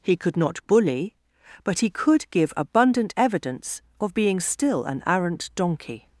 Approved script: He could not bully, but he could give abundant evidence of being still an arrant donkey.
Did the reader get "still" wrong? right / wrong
right